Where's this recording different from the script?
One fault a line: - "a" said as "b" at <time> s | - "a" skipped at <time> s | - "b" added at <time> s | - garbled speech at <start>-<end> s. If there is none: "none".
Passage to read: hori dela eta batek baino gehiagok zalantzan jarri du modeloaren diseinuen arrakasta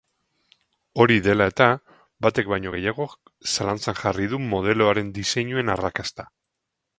none